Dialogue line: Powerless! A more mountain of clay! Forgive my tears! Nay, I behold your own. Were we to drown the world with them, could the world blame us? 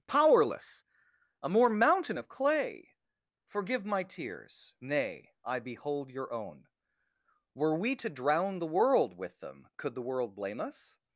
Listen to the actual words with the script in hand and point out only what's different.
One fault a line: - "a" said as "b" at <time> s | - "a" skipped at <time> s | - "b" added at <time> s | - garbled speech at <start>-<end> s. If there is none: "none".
none